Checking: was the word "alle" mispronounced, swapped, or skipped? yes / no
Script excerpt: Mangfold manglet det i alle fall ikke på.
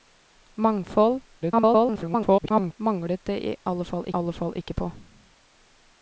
no